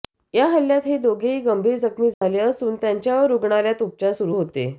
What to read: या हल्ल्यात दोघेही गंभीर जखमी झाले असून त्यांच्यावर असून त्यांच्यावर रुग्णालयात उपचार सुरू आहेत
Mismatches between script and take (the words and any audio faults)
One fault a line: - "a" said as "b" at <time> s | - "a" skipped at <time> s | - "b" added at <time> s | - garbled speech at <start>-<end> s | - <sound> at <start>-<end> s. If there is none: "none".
- "हे" added at 0.8 s
- dropout at 2.1-2.2 s
- "असून त्यांच्यावर" skipped at 3.3 s
- "आहेत" said as "होते" at 4.3 s